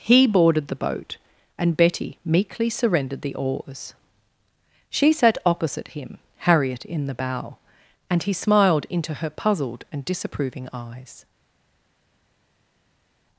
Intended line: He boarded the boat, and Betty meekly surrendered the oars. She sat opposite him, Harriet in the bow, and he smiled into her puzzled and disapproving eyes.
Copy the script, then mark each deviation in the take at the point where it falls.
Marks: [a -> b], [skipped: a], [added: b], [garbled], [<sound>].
He boarded the boat, and Betty meekly surrendered the oars. She sat opposite him, Harriet in the bow, and he smiled into her puzzled and disapproving eyes.